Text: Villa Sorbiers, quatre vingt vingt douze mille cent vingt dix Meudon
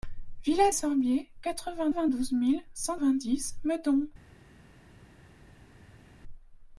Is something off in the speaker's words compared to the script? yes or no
no